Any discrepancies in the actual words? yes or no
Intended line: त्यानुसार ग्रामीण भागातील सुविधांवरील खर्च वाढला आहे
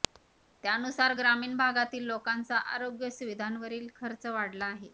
yes